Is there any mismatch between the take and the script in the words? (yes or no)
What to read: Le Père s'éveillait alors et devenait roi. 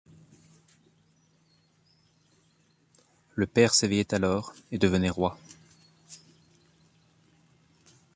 no